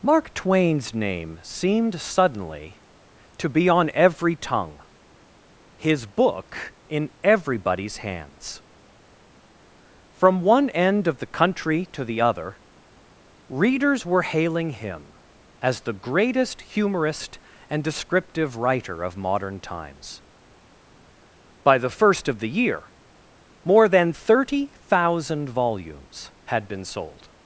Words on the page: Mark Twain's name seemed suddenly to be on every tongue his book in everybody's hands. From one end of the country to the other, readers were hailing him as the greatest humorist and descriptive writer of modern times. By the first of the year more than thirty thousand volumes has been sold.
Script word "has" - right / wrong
wrong